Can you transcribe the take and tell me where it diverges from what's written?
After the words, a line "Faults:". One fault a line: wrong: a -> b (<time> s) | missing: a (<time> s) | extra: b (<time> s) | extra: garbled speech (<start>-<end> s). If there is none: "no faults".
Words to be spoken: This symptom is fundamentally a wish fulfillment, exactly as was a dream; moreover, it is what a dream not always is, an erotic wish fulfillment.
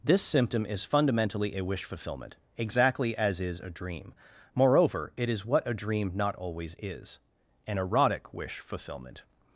This symptom is fundamentally a wish fulfillment, exactly as is a dream; moreover, it is what a dream not always is, an erotic wish fulfillment.
Faults:
wrong: was -> is (3.4 s)